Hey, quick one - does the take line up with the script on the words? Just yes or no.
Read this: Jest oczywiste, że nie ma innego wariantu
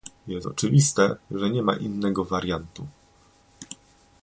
yes